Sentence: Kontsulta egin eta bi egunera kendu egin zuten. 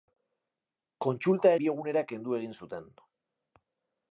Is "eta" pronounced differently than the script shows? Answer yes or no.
yes